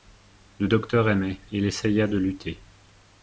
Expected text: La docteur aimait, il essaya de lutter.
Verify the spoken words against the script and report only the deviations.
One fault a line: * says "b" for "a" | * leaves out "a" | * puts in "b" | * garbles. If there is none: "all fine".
* says "Le" for "La"